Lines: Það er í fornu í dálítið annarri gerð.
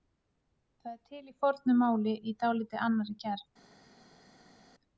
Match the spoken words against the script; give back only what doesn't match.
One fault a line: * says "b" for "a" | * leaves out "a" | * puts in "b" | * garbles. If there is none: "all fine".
* puts in "til"
* puts in "máli"